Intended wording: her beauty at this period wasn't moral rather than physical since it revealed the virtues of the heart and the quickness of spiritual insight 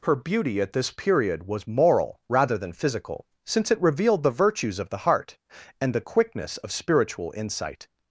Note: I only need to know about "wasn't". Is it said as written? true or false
false